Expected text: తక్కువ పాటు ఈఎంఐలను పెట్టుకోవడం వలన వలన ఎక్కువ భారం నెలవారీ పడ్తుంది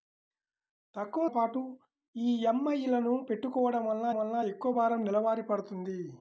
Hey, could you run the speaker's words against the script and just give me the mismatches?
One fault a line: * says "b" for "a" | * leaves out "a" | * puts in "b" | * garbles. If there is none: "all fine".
all fine